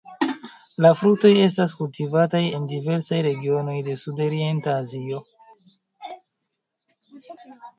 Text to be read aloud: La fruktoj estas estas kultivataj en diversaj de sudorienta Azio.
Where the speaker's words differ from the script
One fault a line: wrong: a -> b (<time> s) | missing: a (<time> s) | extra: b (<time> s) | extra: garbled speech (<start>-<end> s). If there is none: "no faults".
missing: estas (1.7 s)
extra: regionoj (3.3 s)